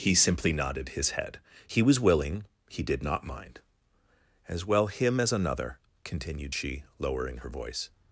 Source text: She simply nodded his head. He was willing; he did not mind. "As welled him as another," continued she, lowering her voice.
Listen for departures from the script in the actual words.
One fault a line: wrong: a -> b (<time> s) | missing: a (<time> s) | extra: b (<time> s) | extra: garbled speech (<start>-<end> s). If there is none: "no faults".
wrong: She -> He (0.0 s)
wrong: welled -> well (4.7 s)